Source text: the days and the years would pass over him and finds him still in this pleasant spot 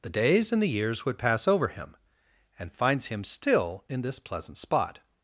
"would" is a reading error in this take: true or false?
false